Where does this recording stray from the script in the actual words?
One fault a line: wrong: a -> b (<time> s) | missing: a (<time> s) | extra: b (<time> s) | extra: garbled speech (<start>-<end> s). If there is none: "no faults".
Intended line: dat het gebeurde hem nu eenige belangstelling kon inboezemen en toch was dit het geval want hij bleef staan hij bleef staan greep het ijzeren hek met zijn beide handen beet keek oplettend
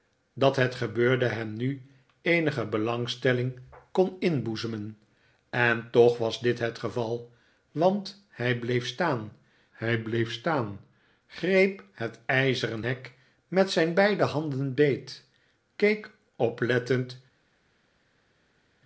no faults